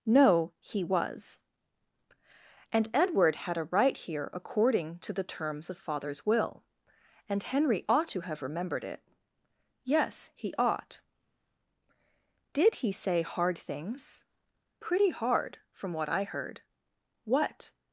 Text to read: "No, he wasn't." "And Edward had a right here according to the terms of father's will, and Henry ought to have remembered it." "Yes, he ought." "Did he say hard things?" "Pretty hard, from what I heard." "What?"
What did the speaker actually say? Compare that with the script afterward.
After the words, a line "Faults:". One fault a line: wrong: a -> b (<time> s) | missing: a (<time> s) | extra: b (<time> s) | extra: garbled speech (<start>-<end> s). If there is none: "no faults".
"No, he was." "And Edward had a right here according to the terms of father's will, and Henry ought to have remembered it." "Yes, he ought." "Did he say hard things?" "Pretty hard, from what I heard." "What?"
Faults:
wrong: wasn't -> was (0.8 s)